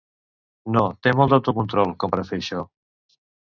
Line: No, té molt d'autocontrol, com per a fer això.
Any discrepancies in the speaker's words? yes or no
no